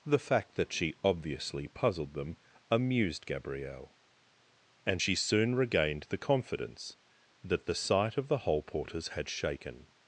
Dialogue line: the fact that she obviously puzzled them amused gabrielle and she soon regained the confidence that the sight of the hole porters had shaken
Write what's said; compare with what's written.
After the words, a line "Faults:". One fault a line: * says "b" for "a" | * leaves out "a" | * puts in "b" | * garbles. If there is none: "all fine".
the fact that she obviously puzzled them amused gabrielle and she soon regained the confidence that the sight of the hole porters had shaken
Faults:
all fine